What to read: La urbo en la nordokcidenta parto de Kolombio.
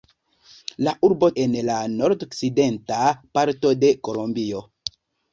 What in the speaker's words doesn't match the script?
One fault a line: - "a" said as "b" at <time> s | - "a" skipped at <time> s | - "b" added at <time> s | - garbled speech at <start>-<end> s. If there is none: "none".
none